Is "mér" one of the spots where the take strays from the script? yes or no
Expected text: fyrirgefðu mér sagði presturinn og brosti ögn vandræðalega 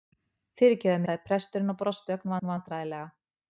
yes